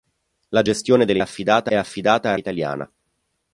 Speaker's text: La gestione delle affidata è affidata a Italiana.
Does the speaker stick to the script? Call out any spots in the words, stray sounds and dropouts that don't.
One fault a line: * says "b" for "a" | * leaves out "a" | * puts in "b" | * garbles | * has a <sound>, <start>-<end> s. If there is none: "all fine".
all fine